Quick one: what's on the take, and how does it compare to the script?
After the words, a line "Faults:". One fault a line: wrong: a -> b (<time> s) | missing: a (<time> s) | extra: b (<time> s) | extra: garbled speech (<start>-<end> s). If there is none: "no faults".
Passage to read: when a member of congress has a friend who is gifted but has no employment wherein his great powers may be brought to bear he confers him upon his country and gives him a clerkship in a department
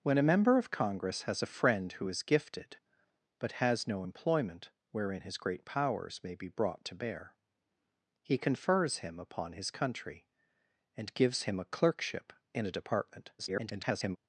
when a member of congress has a friend who is gifted but has no employment wherein his great powers may be brought to bear he confers him upon his country and gives him a clerkship in a department [garbled]
Faults:
extra: garbled speech (13.4-14.2 s)